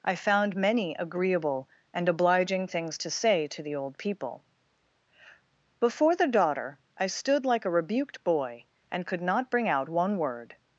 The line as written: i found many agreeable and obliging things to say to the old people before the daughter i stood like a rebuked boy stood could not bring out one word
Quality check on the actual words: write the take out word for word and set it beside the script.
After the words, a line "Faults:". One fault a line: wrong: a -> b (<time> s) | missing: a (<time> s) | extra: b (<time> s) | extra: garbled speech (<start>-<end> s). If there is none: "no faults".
i found many agreeable and obliging things to say to the old people before the daughter i stood like a rebuked boy and could not bring out one word
Faults:
wrong: stood -> and (8.9 s)